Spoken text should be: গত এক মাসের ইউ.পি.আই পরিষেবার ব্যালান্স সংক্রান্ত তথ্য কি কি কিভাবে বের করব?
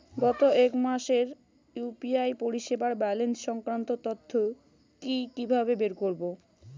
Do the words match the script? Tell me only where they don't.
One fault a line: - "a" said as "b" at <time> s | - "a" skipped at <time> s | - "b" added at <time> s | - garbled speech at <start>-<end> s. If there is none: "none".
- "কি" skipped at 5.2 s